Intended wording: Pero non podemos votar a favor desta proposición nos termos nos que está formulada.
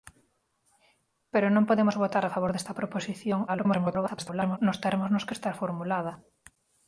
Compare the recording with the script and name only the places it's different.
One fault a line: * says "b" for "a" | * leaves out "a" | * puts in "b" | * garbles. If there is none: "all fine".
* garbles